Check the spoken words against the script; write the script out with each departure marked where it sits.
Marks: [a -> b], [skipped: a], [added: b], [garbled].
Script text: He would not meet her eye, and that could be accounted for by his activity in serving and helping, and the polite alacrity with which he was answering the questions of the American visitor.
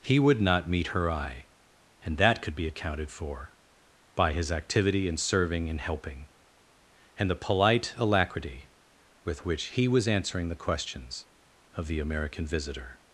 He would not meet her eye, and that could be accounted for by his activity in serving and helping, and the polite alacrity with which he was answering the questions of the American visitor.